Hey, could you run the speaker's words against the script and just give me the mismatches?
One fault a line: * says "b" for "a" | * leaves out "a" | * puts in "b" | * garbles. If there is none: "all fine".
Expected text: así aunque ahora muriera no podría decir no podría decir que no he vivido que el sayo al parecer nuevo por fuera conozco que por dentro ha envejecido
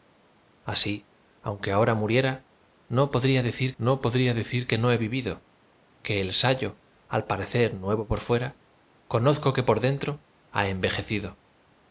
all fine